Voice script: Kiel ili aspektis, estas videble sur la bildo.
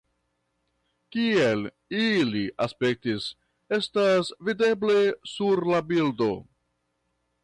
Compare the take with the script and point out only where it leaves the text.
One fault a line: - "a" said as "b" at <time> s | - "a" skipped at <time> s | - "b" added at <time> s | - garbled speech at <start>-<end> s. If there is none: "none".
none